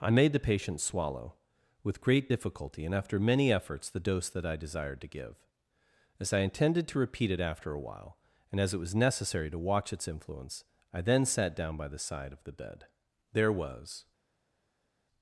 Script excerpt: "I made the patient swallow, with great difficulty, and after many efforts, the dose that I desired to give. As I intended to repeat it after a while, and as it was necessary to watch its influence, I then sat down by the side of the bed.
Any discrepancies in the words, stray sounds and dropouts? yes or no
yes